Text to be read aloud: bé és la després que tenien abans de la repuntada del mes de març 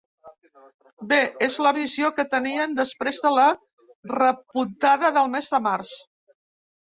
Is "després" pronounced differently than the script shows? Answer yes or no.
yes